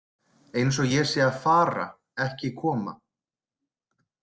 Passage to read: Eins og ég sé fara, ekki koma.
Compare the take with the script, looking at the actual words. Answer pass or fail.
fail